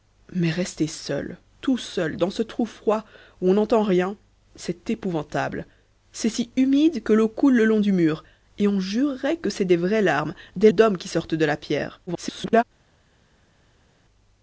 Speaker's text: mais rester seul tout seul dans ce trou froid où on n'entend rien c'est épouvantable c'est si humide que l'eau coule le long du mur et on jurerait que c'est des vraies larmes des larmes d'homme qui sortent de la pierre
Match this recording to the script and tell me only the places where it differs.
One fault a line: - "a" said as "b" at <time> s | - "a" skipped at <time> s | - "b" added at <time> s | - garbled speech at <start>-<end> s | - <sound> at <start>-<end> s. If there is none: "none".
- "larmes" skipped at 10.7 s
- garbled speech at 12.1-12.6 s